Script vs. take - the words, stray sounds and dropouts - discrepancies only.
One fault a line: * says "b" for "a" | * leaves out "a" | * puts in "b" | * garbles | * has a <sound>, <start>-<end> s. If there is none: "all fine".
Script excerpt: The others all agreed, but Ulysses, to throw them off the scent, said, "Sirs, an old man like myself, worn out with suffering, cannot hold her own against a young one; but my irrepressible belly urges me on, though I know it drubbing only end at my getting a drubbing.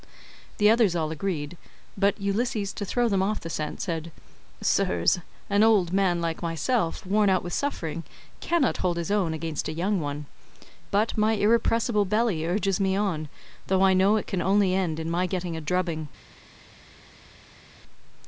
* says "his" for "her"
* says "can" for "drubbing"
* says "in" for "at"